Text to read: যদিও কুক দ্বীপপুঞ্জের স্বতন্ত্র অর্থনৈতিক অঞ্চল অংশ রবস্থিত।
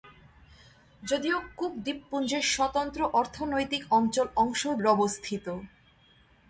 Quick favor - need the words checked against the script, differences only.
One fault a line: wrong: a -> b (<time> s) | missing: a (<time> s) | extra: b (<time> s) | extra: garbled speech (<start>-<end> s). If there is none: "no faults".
no faults